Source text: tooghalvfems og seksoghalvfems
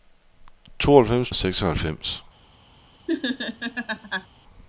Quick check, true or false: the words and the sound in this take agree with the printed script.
false